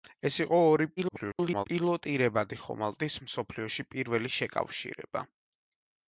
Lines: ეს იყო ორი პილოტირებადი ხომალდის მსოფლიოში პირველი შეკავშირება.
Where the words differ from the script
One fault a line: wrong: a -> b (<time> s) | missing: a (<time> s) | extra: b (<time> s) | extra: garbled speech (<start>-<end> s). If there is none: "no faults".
extra: garbled speech (1.0-1.7 s)